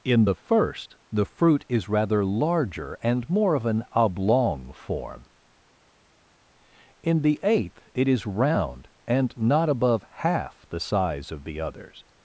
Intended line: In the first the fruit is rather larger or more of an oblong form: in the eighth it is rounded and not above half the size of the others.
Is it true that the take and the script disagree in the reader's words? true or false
true